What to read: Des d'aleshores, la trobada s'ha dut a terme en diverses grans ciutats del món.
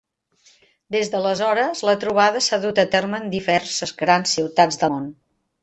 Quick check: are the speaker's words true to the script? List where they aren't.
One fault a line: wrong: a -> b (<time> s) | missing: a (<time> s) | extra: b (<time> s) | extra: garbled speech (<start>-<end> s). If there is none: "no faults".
missing: del (4.8 s)